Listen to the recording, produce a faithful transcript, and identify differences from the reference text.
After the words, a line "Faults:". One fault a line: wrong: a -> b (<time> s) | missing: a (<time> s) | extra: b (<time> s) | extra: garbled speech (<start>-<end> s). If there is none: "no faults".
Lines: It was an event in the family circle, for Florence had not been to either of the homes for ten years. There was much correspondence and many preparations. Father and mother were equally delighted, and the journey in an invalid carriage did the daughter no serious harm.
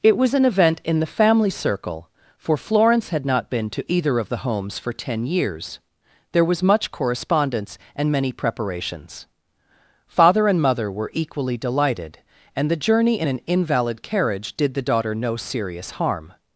It was an event in the family circle, for Florence had not been to either of the homes for ten years. There was much correspondence and many preparations. Father and mother were equally delighted, and the journey in an invalid carriage did the daughter no serious harm.
Faults:
no faults